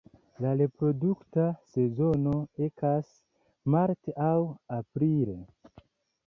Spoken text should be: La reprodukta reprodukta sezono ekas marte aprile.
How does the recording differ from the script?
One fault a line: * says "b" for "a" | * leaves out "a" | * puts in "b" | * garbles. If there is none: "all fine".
* leaves out "reprodukta"
* puts in "aŭ"